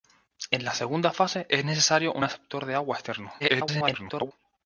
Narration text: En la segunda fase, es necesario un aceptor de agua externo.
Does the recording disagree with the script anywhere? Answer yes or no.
yes